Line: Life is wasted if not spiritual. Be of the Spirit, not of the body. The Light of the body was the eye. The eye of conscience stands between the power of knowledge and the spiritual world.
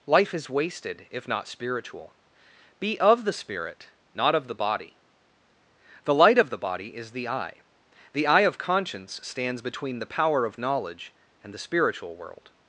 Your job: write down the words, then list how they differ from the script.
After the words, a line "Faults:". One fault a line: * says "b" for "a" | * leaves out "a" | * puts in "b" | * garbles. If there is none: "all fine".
Life is wasted if not spiritual. Be of the Spirit, not of the body. The Light of the body is the eye. The eye of conscience stands between the power of knowledge and the spiritual world.
Faults:
* says "is" for "was"